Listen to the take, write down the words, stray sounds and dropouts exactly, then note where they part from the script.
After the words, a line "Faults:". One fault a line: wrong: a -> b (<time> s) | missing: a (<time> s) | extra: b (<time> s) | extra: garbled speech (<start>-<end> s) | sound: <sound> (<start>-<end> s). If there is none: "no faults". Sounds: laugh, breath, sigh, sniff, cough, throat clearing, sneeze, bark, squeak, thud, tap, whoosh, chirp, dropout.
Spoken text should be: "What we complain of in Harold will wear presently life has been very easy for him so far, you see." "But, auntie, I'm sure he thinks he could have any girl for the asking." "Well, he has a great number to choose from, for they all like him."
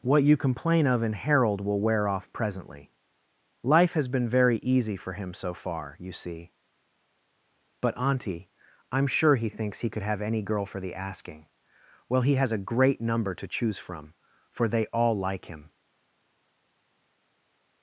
"What you complain of in Harold will wear off presently life has been very easy for him so far, you see." "But, auntie, I'm sure he thinks he could have any girl for the asking." "Well, he has a great number to choose from, for they all like him."
Faults:
wrong: we -> you (0.2 s)
extra: off (2.1 s)